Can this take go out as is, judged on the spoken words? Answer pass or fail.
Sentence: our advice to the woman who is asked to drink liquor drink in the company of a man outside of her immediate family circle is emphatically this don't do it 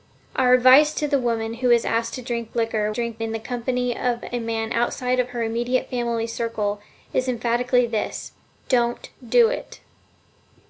pass